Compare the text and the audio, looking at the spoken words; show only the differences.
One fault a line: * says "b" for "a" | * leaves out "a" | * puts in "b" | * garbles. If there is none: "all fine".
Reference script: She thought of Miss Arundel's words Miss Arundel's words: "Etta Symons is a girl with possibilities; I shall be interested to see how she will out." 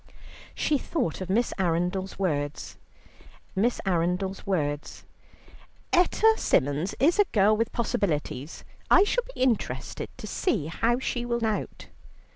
all fine